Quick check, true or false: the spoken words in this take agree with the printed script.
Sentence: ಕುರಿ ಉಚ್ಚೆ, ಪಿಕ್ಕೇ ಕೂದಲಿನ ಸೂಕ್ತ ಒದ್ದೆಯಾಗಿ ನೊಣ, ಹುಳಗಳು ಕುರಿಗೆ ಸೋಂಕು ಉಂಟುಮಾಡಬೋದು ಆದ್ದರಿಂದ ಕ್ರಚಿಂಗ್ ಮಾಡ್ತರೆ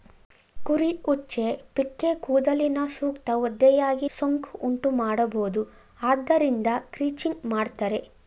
false